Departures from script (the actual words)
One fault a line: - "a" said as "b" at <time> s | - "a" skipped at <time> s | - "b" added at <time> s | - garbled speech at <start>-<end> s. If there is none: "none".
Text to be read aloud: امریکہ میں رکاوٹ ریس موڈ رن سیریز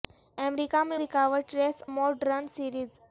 none